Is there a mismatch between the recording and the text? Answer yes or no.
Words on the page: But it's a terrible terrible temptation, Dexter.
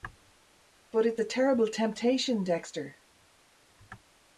yes